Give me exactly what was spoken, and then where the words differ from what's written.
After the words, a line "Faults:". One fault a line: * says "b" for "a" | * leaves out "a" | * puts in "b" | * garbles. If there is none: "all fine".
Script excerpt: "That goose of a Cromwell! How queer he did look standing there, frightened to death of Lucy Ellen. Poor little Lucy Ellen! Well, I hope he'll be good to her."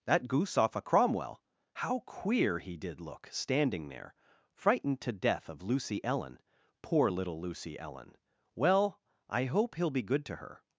"That goose off a Cromwell! How queer he did look standing there, frightened to death of Lucy Ellen. Poor little Lucy Ellen! Well, I hope he'll be good to her."
Faults:
* says "off" for "of"